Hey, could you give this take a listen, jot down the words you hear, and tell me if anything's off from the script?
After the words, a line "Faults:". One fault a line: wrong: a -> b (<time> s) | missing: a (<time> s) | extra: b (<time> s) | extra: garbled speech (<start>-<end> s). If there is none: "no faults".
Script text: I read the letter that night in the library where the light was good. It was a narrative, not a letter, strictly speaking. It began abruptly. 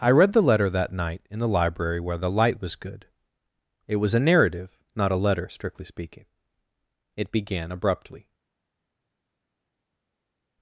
I read the letter that night in the library where the light was good. It was a narrative, not a letter, strictly speaking. It began abruptly.
Faults:
no faults